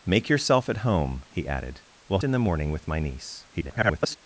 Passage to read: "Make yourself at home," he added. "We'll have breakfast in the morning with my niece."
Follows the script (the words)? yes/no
no